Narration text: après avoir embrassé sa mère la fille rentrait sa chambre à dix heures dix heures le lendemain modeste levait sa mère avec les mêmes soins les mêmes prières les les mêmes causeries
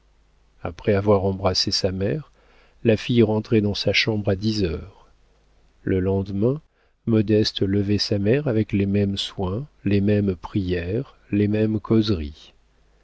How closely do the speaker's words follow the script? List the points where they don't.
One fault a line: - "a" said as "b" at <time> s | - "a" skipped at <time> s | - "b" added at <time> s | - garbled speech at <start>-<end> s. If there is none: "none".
- "dans" added at 3.6 s
- "dix heures" skipped at 5.0 s
- "les" skipped at 11.5 s